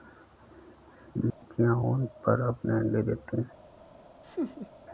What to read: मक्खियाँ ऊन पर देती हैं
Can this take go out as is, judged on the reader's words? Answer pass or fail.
fail